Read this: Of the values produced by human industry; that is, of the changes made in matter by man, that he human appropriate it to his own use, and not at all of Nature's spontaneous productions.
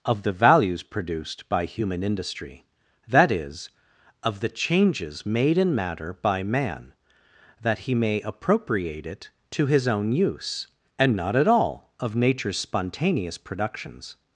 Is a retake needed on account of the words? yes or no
yes